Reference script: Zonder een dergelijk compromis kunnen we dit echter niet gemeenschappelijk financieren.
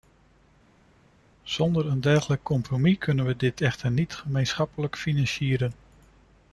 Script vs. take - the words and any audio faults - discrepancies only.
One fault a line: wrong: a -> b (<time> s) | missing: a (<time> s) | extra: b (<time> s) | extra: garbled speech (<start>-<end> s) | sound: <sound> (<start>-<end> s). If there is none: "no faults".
no faults